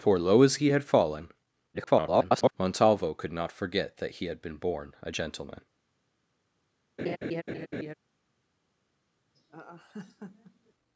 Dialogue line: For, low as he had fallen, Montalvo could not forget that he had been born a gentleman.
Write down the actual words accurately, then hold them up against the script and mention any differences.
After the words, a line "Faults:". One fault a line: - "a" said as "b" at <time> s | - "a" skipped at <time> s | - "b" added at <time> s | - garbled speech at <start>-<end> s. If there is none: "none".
For, low as he had fallen, [garbled] Montalvo could not forget that he had been born a gentleman.
Faults:
- garbled speech at 1.7-2.5 s